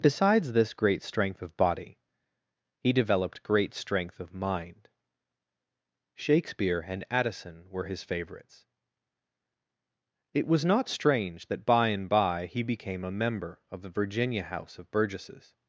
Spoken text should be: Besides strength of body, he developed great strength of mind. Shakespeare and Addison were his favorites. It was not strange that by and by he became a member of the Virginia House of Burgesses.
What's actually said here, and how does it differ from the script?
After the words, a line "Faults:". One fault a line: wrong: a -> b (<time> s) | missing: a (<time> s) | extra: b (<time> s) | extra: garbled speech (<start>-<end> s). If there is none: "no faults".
Besides this great strength of body, he developed great strength of mind. Shakespeare and Addison were his favorites. It was not strange that by and by he became a member of the Virginia House of Burgesses.
Faults:
extra: this great (0.5 s)